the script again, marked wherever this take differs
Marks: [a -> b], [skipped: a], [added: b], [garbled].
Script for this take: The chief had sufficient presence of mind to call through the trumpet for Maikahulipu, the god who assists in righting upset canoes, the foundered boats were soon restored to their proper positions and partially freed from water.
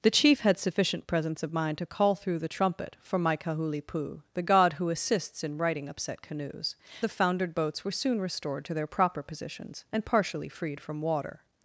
The chief had sufficient presence of mind to call through the trumpet for Maikahulipu, the god who assists in righting upset canoes, the foundered boats were soon restored to their proper positions and partially freed from water.